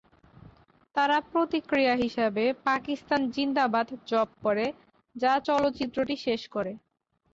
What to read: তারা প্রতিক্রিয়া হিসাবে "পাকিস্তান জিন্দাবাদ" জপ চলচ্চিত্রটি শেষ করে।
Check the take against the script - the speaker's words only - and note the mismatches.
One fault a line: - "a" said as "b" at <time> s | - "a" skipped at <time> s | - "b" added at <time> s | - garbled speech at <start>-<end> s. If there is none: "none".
- "করে যা" added at 4.4 s